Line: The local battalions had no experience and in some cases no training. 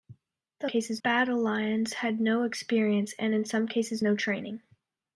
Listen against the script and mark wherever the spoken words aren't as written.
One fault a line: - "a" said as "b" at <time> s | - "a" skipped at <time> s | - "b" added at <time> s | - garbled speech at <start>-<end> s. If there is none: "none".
- "local" said as "cases" at 0.6 s